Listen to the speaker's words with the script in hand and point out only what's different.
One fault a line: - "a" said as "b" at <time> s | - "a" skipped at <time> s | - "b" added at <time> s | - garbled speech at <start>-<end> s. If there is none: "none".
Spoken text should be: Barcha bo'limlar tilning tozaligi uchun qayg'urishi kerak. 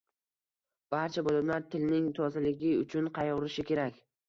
none